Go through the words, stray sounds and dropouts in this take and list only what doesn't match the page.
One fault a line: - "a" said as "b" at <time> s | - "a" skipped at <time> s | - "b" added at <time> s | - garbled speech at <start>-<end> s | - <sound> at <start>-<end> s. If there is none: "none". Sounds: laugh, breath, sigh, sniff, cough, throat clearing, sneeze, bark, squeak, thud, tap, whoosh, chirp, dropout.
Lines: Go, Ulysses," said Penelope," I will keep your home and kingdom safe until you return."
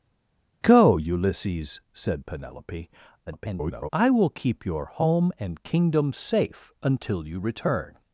- garbled speech at 3.3-3.9 s